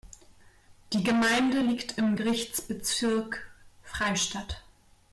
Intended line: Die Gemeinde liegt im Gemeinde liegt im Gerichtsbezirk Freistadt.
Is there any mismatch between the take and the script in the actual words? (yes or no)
yes